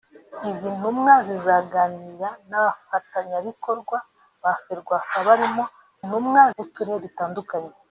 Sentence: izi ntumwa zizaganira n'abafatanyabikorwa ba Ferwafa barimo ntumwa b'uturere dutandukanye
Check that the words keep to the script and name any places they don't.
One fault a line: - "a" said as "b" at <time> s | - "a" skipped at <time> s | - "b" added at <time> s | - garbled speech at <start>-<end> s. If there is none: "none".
none